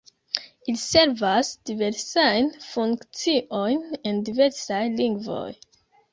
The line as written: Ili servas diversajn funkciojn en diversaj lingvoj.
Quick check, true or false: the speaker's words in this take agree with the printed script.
true